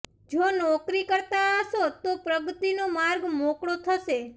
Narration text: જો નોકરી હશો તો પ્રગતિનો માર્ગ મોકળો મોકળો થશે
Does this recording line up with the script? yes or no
no